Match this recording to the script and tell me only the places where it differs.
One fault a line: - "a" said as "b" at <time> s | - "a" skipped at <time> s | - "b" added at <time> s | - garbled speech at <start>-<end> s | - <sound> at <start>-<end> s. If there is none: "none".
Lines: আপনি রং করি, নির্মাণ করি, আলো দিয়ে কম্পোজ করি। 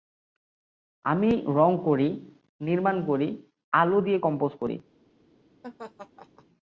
- "আপনি" said as "আমি" at 1.1 s
- laugh at 5.6-6.5 s